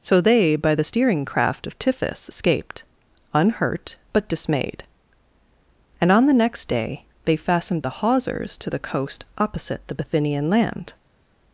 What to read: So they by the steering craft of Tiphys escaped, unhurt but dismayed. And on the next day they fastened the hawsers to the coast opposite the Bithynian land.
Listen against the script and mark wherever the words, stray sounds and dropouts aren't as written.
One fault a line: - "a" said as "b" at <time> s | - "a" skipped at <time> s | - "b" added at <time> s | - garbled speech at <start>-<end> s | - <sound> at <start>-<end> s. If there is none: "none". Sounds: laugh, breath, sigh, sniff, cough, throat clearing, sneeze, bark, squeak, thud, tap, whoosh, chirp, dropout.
none